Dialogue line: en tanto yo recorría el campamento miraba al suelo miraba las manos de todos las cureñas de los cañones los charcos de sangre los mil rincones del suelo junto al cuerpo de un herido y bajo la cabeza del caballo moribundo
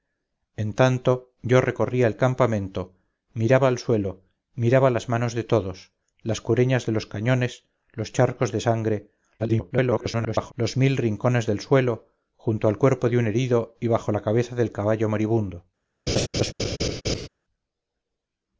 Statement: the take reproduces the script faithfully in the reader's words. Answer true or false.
false